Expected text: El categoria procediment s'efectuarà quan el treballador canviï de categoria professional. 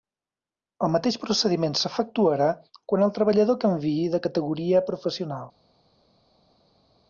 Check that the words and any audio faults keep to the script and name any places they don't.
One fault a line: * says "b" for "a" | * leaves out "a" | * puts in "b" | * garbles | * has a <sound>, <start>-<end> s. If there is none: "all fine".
* says "mateix" for "categoria"